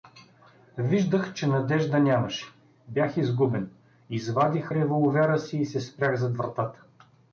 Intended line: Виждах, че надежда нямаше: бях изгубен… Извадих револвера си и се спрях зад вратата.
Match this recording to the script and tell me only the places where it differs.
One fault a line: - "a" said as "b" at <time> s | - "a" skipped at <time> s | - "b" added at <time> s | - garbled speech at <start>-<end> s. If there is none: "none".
none